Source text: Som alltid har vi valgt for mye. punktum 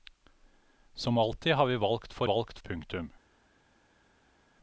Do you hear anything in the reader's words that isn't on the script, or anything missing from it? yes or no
yes